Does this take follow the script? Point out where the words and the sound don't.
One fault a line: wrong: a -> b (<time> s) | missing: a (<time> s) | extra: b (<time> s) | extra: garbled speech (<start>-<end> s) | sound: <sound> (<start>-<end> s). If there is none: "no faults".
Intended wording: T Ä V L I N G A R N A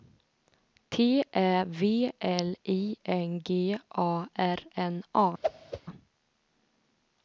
sound: whoosh (5.4-5.8 s)